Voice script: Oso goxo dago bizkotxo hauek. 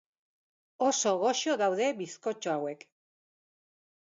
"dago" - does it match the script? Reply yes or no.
no